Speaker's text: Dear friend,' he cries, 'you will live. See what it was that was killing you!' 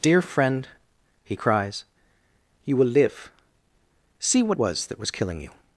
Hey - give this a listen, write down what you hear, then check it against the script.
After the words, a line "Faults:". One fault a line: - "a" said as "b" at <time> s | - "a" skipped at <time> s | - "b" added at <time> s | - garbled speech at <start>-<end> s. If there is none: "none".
Dear friend,' he cries, 'you will live. See what was that was killing you!'
Faults:
- "it" skipped at 4.6 s